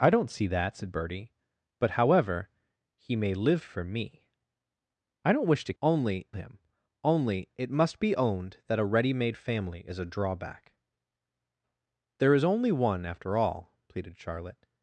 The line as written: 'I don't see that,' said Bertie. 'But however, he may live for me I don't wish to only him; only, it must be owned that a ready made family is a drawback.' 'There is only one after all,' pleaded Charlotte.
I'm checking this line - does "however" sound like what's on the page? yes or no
yes